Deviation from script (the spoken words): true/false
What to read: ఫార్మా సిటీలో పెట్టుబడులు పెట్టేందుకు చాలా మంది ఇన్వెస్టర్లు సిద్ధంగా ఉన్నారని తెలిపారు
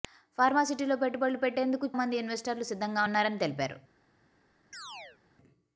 true